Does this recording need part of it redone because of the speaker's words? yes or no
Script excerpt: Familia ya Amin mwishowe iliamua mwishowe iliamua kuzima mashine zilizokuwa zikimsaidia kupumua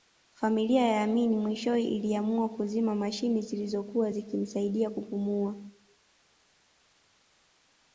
yes